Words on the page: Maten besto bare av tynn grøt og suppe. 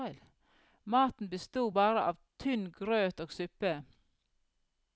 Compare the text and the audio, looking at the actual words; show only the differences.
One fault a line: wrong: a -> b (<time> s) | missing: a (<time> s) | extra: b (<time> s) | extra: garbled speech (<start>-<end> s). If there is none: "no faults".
no faults